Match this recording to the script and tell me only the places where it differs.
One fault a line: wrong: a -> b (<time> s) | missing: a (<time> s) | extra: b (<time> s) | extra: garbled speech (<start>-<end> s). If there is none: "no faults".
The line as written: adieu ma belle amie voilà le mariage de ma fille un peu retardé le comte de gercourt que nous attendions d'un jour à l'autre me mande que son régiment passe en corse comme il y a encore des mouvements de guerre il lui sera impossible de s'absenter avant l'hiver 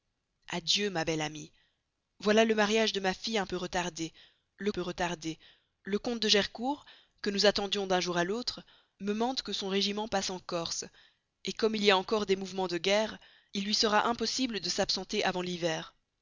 extra: peu retardé le (4.7 s)